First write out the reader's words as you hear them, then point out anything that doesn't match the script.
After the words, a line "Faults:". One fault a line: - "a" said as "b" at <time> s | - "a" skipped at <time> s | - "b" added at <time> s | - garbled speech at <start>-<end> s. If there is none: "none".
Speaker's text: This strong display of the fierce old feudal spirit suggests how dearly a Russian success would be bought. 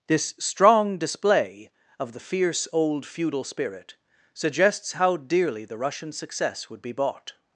This strong display of the fierce old feudal spirit suggests how dearly the Russian success would be bought.
Faults:
- "a" said as "the" at 5.7 s